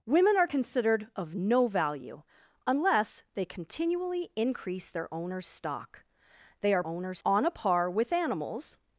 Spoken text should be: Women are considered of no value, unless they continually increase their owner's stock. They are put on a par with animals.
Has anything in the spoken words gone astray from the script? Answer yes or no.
yes